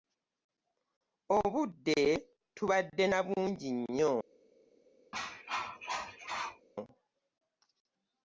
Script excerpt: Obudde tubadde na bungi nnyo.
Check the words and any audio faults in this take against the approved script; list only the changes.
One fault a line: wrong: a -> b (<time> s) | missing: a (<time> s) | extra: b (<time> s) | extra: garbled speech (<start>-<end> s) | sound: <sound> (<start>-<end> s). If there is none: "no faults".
sound: cough (5.1-6.7 s)